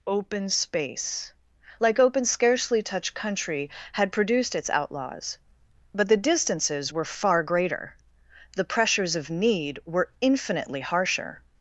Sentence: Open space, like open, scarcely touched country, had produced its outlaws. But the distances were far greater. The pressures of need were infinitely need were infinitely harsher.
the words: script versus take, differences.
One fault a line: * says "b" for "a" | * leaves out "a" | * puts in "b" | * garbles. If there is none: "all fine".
* leaves out "need were infinitely"